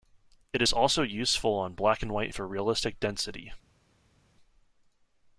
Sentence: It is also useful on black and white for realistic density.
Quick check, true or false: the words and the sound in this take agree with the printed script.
true